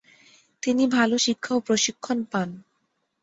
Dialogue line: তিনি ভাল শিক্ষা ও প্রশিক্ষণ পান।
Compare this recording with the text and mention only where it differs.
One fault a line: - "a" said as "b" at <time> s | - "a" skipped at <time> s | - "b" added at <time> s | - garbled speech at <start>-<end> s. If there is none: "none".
none